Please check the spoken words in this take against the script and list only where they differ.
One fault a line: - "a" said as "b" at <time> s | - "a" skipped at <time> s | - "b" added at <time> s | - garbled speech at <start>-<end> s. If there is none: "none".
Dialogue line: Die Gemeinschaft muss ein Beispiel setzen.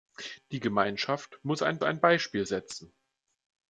- "ein" added at 1.8 s